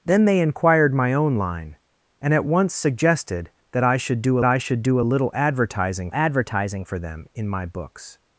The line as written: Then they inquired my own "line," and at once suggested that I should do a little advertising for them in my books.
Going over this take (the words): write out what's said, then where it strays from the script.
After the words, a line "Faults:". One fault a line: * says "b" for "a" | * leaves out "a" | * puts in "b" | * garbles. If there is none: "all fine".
Then they inquired my own "line," and at once suggested that I should do I should do a little advertising advertising for them in my books.
Faults:
* puts in "I should do"
* puts in "advertising"